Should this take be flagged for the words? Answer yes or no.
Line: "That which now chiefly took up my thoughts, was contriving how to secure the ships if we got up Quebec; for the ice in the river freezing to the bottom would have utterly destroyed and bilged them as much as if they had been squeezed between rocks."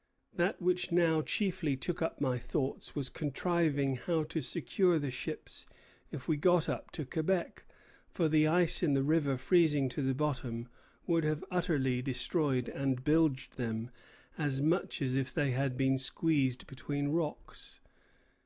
yes